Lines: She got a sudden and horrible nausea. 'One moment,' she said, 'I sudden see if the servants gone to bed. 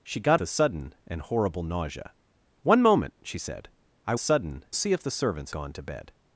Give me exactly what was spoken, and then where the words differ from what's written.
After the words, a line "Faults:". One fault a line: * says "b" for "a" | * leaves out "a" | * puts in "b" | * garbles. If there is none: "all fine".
She got a sudden and horrible nausea. 'One moment,' she said, 'I sudden see if the servants gone to bed.
Faults:
all fine